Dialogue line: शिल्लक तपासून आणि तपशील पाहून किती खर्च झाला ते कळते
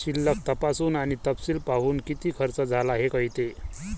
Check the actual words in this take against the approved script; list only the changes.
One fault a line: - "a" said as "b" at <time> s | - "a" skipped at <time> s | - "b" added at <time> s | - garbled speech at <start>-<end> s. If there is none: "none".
- "ते" said as "हे" at 2.9 s